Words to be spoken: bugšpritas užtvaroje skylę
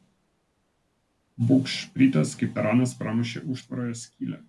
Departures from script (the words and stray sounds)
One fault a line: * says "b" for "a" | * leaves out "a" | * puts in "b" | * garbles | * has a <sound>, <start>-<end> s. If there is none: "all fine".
* puts in "kaip taranas pramušė"